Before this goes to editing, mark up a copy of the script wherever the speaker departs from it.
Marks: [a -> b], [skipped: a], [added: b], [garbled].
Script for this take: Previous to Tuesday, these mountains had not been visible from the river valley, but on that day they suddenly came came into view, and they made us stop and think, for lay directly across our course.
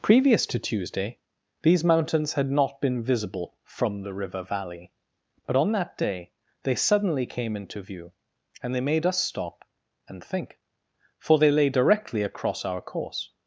Previous to Tuesday, these mountains had not been visible from the river valley, but on that day they suddenly came [skipped: came] into view, and they made us stop and think, for [added: they] lay directly across our course.